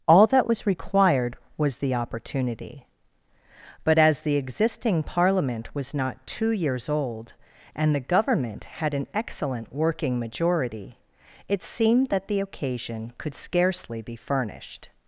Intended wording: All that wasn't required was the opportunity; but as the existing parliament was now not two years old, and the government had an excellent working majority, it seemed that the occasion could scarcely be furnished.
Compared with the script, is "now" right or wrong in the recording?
wrong